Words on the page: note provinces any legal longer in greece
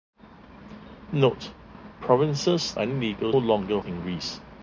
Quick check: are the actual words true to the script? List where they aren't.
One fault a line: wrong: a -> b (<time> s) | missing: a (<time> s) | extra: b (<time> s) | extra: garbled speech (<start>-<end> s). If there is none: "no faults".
no faults